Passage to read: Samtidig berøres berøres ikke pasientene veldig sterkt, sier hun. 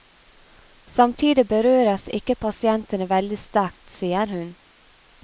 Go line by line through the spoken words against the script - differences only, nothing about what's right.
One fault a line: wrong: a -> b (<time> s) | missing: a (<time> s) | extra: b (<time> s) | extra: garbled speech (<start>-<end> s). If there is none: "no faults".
missing: berøres (2.1 s)